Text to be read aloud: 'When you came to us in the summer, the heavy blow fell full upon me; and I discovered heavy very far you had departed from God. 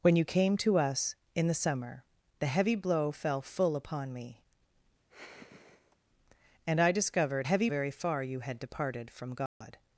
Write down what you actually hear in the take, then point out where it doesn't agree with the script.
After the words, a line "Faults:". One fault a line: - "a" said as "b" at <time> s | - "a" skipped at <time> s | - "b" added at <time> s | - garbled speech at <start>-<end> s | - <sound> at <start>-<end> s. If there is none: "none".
'When you came to us in the summer, the heavy blow fell full upon me; and I discovered heavy very far you had departed from God.
Faults:
- sigh at 5.1-6.0 s
- dropout at 9.5-9.6 s